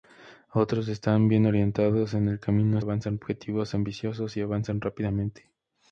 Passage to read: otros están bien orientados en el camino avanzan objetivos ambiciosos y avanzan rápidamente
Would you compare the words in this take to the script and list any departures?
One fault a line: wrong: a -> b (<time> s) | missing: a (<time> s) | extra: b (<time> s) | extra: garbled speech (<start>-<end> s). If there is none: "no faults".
no faults